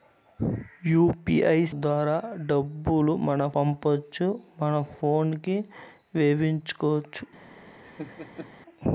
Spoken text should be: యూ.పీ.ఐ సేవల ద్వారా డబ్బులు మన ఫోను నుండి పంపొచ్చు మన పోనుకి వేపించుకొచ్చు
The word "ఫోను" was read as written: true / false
false